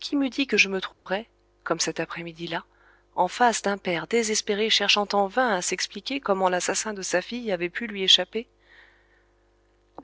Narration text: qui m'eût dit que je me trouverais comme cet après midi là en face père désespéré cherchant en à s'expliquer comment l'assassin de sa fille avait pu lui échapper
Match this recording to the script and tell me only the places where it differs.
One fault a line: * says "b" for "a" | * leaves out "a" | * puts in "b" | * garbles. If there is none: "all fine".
* puts in "d'un"
* puts in "vain"